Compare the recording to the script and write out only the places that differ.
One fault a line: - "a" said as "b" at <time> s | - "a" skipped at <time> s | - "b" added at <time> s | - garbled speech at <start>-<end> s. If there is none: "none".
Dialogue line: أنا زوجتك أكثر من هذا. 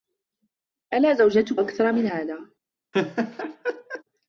none